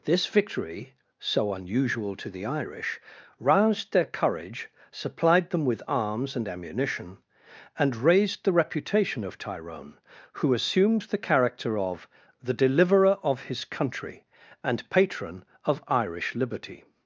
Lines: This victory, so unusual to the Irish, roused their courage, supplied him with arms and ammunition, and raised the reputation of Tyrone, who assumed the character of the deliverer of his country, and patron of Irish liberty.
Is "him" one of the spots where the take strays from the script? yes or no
yes